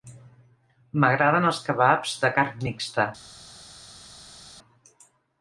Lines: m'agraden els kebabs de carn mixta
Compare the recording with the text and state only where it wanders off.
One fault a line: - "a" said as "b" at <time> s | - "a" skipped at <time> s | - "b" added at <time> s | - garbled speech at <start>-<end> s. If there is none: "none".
none